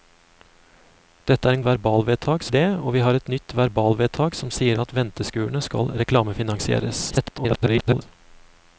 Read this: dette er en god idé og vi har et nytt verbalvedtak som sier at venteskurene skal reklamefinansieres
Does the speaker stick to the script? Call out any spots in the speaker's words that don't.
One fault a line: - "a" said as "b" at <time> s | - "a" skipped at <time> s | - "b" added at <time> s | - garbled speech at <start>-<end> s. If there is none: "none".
- "god" said as "verbalvedtak" at 1.7 s
- garbled speech at 7.1-8.0 s